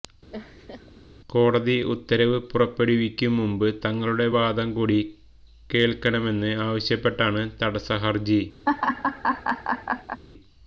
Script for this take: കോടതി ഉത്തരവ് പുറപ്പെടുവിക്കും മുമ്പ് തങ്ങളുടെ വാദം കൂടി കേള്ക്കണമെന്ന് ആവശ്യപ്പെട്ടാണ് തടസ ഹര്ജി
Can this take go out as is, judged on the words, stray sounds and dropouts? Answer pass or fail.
fail